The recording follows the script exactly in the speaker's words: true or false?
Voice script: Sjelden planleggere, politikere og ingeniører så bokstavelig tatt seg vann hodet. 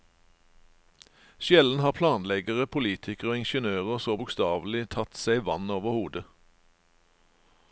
false